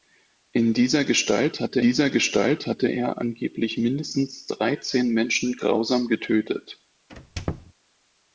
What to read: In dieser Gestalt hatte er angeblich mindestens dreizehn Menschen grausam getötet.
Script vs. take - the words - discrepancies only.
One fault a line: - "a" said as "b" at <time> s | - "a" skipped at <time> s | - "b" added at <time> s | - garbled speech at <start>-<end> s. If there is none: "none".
- "dieser Gestalt hatte" added at 1.8 s